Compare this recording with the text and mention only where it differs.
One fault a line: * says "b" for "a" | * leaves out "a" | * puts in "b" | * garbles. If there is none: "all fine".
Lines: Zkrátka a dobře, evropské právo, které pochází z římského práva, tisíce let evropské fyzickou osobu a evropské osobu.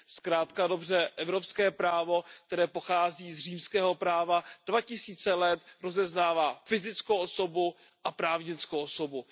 * puts in "dva"
* says "rozeznává" for "evropské"
* says "právnickou" for "evropské"